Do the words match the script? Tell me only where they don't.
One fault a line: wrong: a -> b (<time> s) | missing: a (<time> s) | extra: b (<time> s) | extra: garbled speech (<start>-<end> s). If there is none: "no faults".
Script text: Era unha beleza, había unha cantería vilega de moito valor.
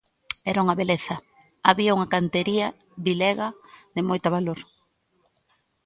no faults